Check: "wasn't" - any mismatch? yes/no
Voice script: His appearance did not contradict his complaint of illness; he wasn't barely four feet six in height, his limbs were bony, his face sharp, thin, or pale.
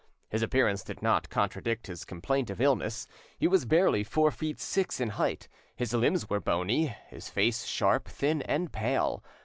yes